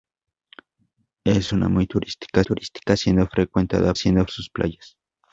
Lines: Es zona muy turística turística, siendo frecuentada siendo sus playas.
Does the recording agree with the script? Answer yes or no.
yes